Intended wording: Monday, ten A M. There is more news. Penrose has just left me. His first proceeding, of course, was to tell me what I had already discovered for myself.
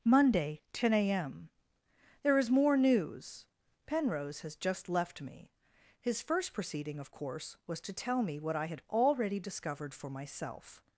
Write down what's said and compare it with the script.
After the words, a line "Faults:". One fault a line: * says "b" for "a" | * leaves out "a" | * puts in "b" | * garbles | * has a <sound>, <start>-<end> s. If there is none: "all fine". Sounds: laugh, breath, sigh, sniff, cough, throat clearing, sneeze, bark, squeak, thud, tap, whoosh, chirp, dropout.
Monday, ten A M. There is more news. Penrose has just left me. His first proceeding, of course, was to tell me what I had already discovered for myself.
Faults:
all fine